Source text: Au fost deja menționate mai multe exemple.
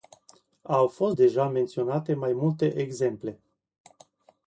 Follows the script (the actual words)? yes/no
yes